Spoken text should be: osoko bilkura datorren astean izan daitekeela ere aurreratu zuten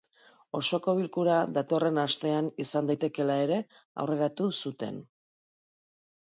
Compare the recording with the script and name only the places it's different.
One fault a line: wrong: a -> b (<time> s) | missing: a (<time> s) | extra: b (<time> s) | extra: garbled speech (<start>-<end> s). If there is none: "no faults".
no faults